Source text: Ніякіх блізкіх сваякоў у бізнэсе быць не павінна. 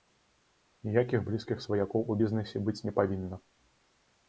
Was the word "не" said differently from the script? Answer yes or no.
no